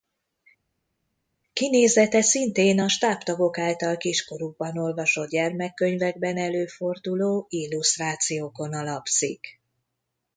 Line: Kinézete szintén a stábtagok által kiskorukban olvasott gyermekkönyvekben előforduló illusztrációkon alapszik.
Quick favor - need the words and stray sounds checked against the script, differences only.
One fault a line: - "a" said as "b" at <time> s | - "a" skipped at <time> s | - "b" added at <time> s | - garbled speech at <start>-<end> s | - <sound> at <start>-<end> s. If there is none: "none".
none